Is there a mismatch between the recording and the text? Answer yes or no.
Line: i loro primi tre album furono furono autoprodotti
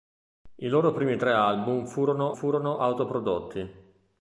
no